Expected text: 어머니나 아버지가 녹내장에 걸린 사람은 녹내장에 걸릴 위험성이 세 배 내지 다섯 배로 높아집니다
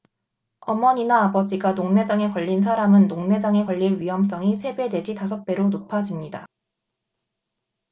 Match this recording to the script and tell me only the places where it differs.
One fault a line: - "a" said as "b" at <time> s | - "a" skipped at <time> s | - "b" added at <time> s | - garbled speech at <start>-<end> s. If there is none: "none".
none